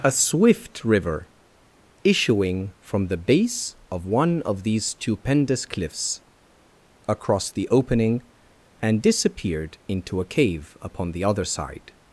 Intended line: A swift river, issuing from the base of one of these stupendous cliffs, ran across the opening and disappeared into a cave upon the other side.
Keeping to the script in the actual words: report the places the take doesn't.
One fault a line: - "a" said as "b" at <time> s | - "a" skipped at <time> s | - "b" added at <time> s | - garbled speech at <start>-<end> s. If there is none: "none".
- "ran" skipped at 6.2 s